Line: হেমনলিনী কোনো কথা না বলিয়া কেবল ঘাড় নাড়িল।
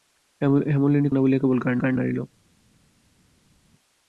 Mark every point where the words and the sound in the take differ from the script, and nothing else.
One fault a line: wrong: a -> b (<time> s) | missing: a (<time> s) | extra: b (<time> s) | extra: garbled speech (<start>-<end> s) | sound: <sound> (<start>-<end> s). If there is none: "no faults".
missing: কোনো কথা (1.1 s)
extra: ঘাড় (1.8 s)